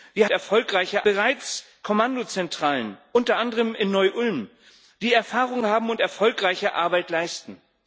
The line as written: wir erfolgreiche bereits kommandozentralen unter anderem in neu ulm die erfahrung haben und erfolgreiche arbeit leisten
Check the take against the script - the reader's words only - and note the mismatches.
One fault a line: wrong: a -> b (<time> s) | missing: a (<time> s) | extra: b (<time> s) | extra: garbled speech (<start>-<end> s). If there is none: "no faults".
no faults